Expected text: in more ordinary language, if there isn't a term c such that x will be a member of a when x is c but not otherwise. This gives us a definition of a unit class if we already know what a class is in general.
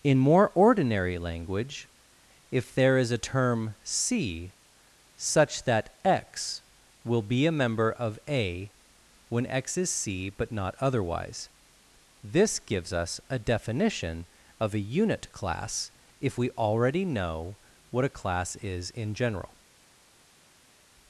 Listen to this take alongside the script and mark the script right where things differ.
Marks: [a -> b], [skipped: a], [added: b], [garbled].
in more ordinary language, if there [isn't -> is] a term c such that x will be a member of a when x is c but not otherwise. This gives us a definition of a unit class if we already know what a class is in general.